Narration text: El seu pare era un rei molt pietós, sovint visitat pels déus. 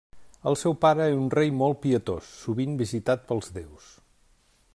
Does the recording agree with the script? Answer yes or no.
yes